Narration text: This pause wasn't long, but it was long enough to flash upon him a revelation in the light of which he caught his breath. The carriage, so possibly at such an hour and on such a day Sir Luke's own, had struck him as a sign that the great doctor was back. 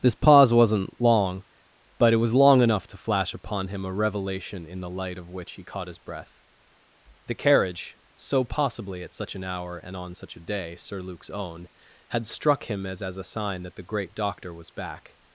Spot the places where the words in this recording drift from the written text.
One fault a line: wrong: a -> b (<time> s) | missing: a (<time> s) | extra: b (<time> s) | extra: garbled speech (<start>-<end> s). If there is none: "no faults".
extra: as (13.0 s)